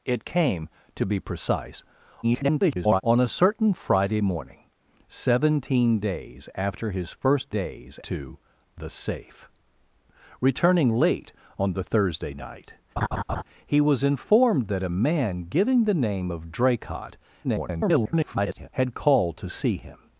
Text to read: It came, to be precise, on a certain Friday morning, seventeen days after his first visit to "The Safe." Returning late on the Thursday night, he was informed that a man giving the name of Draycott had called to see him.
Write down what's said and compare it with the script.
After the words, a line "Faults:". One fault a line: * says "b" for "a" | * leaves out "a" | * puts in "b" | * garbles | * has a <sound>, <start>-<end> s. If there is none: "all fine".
It came, to be precise, [garbled] on a certain Friday morning, seventeen days after his first days to "The Safe." Returning late on the Thursday night, he was informed that a man giving the name of Draycott [garbled] had called to see him.
Faults:
* garbles
* says "days" for "visit"
* has a laugh, 13.0-13.4 s
* garbles